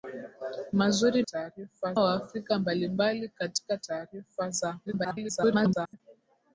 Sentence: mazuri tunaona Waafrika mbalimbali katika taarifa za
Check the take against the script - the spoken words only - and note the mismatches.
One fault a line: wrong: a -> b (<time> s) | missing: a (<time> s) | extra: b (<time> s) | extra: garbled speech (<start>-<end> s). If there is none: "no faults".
wrong: tunaona -> taarifa (1.2 s)
extra: garbled speech (4.9-6.0 s)